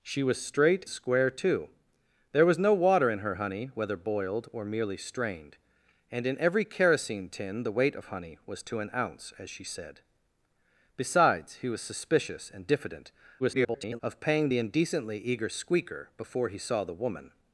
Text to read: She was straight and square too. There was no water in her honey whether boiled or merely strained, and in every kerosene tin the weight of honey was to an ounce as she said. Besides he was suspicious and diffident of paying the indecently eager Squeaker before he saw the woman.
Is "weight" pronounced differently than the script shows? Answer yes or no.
no